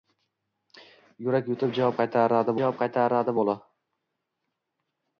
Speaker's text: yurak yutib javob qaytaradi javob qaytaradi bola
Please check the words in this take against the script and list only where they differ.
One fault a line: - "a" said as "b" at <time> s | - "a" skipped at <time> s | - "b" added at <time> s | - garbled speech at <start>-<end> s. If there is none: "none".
none